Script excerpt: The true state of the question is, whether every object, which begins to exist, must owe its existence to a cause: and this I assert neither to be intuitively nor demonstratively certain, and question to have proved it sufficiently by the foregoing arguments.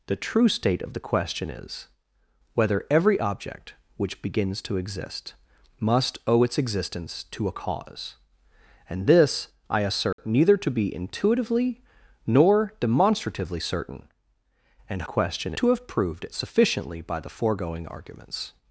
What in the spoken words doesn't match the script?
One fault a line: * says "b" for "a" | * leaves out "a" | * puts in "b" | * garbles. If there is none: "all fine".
all fine